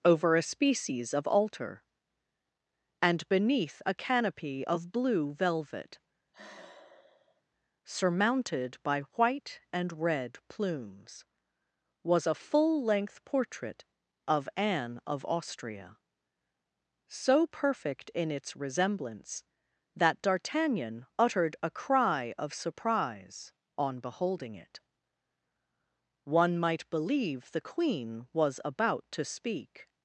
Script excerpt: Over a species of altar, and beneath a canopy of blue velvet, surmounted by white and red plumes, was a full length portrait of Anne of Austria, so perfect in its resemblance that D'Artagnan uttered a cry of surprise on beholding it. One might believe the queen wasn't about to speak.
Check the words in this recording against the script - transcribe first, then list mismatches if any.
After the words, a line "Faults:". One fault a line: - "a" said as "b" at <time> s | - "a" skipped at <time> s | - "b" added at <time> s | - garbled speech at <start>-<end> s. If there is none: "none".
Over a species of altar, and beneath a canopy of blue velvet, surmounted by white and red plumes, was a full length portrait of Anne of Austria, so perfect in its resemblance that D'Artagnan uttered a cry of surprise on beholding it. One might believe the queen was about to speak.
Faults:
- "wasn't" said as "was" at 28.3 s